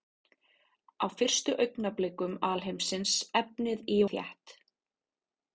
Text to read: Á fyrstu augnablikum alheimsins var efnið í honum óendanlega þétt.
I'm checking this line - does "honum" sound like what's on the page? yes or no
no